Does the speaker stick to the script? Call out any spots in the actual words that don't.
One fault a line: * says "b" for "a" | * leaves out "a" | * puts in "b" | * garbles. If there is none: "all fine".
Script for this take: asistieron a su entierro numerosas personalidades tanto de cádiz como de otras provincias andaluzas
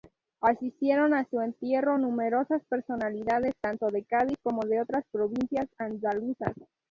all fine